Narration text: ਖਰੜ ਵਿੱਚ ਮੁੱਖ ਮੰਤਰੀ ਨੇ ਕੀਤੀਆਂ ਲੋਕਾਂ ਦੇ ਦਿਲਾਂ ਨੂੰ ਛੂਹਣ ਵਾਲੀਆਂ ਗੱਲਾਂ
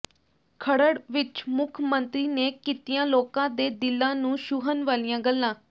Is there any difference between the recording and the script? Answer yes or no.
no